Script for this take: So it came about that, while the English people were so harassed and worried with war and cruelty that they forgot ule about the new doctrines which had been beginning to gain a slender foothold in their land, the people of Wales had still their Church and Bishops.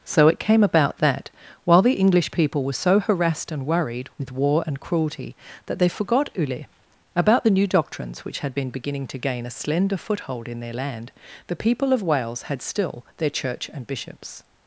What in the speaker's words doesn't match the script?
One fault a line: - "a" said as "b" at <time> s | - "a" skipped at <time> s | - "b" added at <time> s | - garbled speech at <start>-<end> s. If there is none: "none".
none